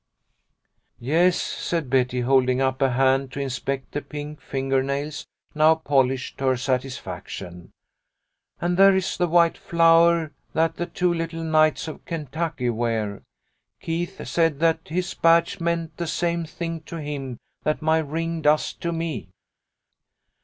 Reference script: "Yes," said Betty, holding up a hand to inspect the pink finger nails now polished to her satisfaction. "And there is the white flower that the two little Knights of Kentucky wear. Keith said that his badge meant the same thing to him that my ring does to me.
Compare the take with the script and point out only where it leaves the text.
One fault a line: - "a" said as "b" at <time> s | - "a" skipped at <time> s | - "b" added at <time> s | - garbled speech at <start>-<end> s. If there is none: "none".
none